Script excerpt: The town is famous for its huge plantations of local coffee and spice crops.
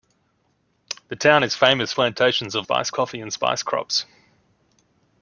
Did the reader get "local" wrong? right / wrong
wrong